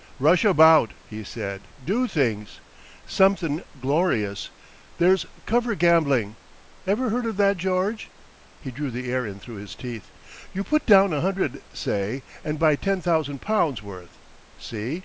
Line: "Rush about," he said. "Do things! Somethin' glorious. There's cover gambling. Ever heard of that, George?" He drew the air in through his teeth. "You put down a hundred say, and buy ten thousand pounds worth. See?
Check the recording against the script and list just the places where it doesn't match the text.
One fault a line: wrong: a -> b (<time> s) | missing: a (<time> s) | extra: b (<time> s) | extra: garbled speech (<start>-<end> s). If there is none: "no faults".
no faults